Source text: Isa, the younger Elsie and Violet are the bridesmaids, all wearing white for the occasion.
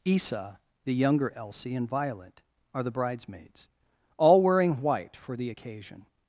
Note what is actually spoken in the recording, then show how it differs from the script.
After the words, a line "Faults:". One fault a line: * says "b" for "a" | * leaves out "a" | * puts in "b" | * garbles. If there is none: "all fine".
Isa, the younger Elsie and Violet are the bridesmaids, all wearing white for the occasion.
Faults:
all fine